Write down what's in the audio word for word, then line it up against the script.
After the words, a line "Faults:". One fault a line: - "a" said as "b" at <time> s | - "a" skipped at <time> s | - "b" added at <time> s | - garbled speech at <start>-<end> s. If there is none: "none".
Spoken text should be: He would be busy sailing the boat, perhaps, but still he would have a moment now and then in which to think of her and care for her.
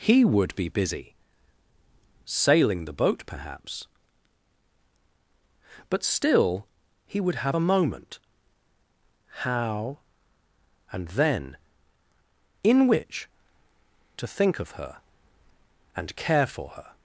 He would be busy sailing the boat, perhaps, but still he would have a moment how and then in which to think of her and care for her.
Faults:
- "now" said as "how" at 9.5 s